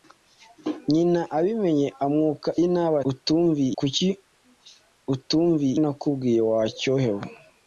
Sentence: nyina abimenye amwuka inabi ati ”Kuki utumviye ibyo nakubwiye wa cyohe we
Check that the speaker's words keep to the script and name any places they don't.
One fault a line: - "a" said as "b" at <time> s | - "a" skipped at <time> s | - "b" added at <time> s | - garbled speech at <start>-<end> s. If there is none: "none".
- "ati" said as "utumviye" at 3.1 s
- "ibyo" skipped at 5.7 s